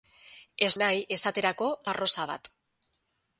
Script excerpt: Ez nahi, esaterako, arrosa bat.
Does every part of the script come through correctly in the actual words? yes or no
yes